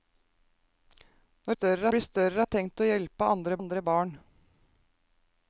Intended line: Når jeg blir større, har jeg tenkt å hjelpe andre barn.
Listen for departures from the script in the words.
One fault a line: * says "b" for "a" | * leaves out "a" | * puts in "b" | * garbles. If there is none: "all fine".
* says "større" for "jeg"
* leaves out "har"
* puts in "andre"